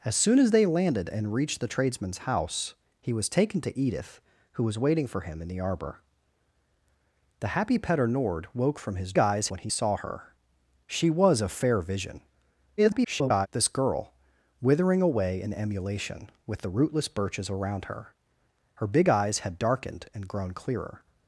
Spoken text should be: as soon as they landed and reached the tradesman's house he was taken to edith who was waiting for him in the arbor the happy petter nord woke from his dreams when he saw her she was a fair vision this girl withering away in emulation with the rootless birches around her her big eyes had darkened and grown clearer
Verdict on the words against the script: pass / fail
fail